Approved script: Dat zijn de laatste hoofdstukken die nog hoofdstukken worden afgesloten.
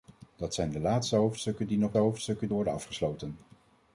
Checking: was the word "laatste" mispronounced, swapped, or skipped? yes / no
no